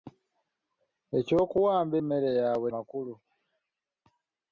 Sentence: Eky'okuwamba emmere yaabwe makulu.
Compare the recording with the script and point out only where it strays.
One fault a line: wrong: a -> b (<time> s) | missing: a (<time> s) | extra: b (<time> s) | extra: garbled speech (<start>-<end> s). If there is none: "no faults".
no faults